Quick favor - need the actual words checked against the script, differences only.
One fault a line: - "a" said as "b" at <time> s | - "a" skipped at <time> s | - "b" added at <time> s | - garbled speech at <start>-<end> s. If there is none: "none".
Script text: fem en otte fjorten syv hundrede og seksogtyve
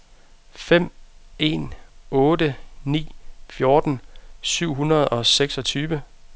- "ni" added at 2.8 s